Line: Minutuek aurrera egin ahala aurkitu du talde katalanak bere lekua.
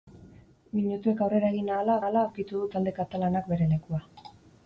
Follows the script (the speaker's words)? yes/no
no